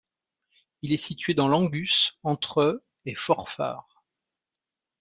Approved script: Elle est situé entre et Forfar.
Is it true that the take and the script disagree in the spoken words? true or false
true